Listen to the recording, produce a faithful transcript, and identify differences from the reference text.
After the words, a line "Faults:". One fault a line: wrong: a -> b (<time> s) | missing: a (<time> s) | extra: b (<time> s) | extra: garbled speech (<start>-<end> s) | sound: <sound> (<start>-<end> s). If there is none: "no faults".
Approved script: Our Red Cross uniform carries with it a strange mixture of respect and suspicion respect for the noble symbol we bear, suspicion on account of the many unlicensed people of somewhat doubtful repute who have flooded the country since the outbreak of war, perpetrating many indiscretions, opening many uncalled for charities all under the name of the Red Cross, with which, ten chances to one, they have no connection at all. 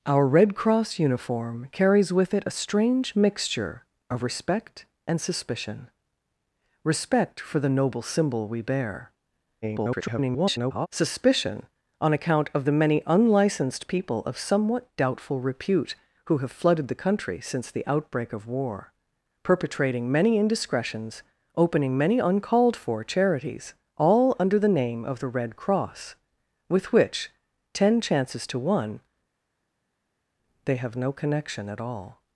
Our Red Cross uniform carries with it a strange mixture of respect and suspicion respect for the noble symbol we bear, [garbled] suspicion on account of the many unlicensed people of somewhat doubtful repute who have flooded the country since the outbreak of war, perpetrating many indiscretions, opening many uncalled for charities all under the name of the Red Cross, with which, ten chances to one, they have no connection at all.
Faults:
extra: garbled speech (9.6-10.9 s)